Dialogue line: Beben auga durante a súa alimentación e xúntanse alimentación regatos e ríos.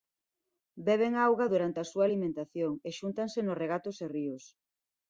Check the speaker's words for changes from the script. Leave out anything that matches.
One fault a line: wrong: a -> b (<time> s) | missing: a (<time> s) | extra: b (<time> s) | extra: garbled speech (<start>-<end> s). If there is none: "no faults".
wrong: alimentación -> nos (3.4 s)